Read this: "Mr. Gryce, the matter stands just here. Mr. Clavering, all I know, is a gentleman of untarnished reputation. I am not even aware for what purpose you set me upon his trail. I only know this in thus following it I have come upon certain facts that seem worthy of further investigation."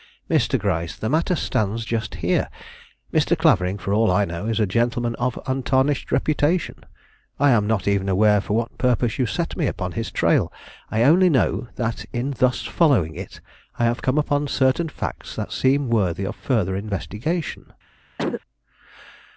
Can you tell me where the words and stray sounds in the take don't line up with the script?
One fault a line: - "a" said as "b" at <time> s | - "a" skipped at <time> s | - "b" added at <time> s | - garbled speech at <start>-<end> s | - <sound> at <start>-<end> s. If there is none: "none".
- "for" added at 3.8 s
- "this" said as "that" at 11.8 s
- cough at 18.2-18.4 s